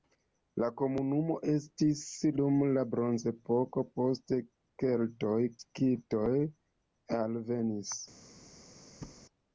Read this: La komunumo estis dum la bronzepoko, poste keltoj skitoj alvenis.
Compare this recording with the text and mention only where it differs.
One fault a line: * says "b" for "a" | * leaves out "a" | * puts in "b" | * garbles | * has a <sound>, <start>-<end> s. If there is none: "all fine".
* has a thud, 9.0-9.2 s